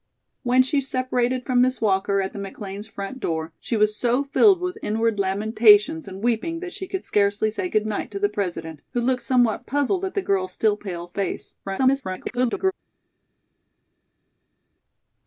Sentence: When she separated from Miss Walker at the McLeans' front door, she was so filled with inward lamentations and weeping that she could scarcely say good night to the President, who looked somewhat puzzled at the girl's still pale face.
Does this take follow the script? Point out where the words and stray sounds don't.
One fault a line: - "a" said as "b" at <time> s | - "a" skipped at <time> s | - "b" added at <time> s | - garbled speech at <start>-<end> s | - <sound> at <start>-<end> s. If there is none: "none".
- garbled speech at 11.6-12.7 s